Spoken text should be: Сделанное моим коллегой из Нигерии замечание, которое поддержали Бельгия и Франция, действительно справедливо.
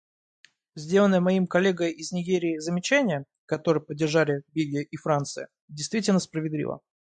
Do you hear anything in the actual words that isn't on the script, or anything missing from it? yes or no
no